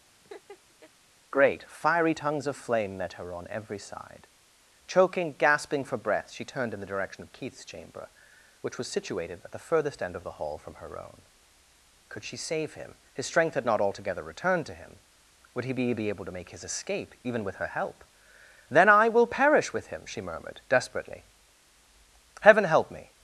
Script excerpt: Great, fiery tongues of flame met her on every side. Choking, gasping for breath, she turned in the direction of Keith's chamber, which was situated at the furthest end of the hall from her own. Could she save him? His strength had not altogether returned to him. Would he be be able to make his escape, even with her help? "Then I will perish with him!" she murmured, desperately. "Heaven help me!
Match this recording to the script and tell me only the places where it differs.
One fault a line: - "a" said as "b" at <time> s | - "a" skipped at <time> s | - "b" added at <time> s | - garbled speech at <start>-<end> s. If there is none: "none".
none